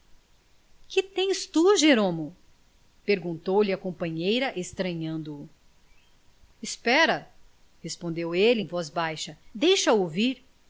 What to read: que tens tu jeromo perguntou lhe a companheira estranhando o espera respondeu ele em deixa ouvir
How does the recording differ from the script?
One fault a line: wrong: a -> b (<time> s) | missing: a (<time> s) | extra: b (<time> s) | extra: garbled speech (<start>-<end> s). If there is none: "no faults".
extra: voz baixa (8.7 s)